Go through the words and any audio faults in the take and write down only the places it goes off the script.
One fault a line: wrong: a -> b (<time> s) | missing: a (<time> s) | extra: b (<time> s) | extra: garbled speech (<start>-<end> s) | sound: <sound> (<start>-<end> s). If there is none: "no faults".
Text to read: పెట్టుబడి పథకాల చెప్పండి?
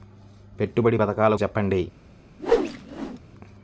sound: whoosh (2.4-3.2 s)